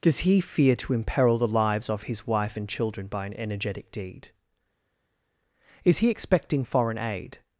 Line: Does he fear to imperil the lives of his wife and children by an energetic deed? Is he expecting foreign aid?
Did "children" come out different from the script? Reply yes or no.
no